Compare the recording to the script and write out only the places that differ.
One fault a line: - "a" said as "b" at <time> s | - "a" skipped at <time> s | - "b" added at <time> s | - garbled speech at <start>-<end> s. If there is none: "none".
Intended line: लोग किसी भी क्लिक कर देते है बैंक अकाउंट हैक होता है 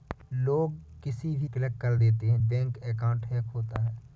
none